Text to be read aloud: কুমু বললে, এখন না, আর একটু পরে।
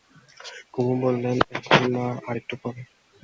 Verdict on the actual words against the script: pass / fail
pass